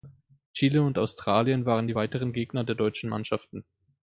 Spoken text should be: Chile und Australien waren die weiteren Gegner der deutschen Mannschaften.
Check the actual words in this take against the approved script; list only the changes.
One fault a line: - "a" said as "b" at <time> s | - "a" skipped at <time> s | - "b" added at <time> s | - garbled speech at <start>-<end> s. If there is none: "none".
none